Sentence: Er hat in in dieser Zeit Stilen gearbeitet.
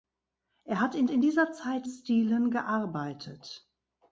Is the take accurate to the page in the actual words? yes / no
yes